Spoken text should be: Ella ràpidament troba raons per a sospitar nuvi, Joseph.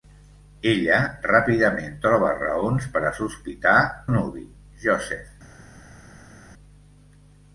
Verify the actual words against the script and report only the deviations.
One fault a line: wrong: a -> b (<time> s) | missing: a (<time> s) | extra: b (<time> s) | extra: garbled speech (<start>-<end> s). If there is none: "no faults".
no faults